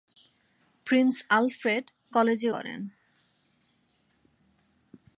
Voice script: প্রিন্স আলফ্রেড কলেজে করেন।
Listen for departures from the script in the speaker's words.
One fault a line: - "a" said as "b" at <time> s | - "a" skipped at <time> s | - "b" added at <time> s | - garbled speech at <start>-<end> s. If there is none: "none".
none